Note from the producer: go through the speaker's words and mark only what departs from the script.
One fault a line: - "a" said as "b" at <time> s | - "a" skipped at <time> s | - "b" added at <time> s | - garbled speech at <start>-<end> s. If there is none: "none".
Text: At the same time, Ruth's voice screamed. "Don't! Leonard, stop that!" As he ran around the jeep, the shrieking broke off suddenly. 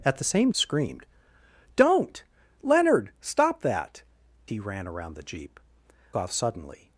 - "time Ruth's voice" skipped at 0.5 s
- "As" skipped at 4.0 s
- "the shrieking broke" skipped at 5.6 s